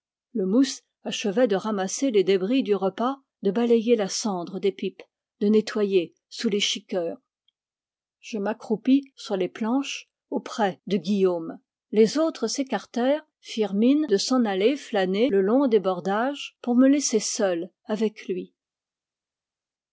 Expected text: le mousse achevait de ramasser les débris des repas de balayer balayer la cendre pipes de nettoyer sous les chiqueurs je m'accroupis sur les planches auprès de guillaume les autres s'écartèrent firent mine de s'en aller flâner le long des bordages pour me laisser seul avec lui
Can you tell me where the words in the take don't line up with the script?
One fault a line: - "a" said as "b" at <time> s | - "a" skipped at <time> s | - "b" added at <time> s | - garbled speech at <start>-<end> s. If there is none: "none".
- "des" said as "du" at 2.6 s
- "balayer" skipped at 4.0 s
- "des" added at 4.6 s